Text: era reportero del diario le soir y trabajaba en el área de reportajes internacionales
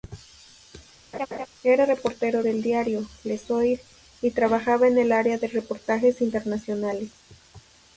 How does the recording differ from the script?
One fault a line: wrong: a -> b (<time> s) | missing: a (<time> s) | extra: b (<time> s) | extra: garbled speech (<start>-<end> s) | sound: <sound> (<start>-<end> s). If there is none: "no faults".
sound: laugh (1.1-1.5 s)